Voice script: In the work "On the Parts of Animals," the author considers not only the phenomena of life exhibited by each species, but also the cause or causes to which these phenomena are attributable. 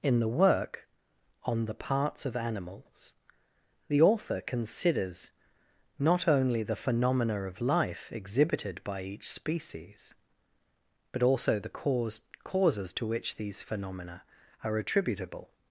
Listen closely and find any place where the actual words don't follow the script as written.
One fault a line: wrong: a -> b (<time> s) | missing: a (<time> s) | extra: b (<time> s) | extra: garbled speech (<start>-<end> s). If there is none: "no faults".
missing: or (12.2 s)